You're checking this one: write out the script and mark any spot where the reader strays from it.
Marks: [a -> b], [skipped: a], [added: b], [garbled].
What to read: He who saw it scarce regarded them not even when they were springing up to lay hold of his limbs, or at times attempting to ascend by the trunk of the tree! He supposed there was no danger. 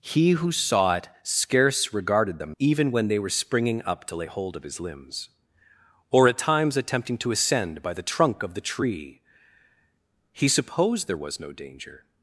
He who saw it scarce regarded them [skipped: not] even when they were springing up to lay hold of his limbs, or at times attempting to ascend by the trunk of the tree! He supposed there was no danger.